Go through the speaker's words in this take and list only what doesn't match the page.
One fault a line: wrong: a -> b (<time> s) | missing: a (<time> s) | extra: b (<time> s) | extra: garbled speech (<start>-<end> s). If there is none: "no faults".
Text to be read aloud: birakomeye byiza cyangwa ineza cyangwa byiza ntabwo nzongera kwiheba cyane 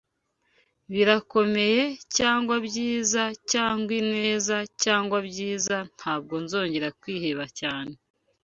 extra: cyangwa (2.2 s)